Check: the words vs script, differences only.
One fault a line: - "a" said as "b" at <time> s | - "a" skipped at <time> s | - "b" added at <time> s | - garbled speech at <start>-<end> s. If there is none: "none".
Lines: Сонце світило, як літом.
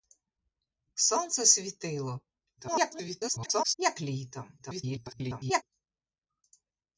- garbled speech at 2.6-3.7 s
- garbled speech at 4.6-5.6 s